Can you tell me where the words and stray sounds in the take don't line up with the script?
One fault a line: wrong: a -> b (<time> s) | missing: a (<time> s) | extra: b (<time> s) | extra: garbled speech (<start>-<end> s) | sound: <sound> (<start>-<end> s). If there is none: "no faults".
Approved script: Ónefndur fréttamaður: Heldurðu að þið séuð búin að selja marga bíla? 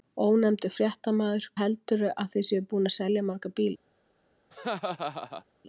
sound: laugh (4.5-5.4 s)